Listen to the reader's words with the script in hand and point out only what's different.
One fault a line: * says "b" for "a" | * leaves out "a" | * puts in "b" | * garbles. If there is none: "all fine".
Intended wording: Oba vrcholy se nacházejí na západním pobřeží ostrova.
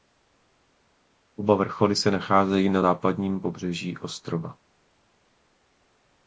all fine